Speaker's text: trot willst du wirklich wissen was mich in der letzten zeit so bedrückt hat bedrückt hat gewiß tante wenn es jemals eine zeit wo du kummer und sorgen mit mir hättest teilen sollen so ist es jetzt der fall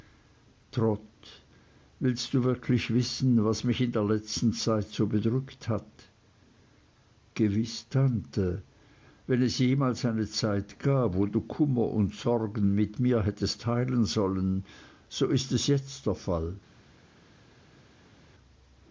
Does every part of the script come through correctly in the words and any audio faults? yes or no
no